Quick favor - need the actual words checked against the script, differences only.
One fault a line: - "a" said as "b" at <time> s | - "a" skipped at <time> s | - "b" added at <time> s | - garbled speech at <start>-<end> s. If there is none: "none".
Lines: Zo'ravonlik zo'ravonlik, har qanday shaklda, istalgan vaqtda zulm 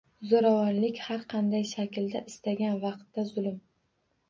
- "zo'ravonlik" skipped at 1.0 s